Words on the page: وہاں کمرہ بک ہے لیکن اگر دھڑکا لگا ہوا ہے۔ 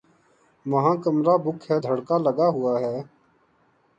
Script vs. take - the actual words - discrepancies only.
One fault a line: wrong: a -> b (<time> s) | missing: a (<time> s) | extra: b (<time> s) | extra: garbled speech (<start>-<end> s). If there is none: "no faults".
missing: لیکن اگر (1.8 s)